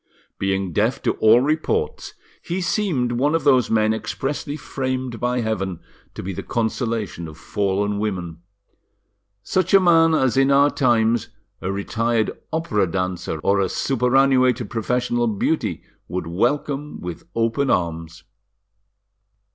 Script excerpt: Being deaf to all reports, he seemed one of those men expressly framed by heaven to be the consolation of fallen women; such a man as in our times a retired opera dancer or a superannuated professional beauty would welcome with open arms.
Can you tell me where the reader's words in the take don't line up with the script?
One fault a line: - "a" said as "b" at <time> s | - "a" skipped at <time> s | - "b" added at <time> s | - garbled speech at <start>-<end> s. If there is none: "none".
none